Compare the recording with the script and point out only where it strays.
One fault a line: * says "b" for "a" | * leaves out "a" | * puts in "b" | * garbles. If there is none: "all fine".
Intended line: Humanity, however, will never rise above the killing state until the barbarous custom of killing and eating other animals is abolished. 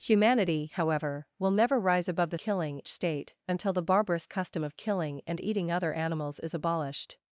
all fine